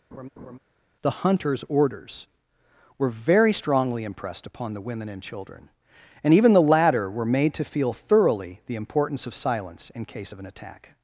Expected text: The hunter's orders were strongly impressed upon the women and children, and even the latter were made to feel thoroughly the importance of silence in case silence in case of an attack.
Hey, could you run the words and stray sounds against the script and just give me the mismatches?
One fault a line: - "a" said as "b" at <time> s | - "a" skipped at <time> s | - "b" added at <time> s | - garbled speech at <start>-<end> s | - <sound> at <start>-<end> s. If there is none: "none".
- laugh at 0.1-0.6 s
- "very" added at 3.1 s
- "silence in case" skipped at 10.3 s